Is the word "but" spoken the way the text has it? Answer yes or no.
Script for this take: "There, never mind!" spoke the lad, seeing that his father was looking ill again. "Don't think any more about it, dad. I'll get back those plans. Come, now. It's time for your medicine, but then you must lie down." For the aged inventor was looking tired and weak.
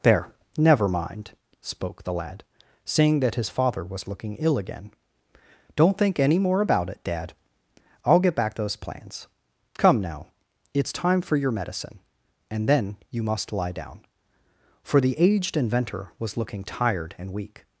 no